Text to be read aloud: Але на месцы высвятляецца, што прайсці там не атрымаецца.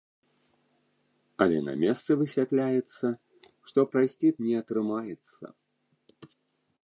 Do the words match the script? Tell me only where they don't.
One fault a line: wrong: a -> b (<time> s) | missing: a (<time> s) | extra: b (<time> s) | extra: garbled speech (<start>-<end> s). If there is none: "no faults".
missing: там (4.3 s)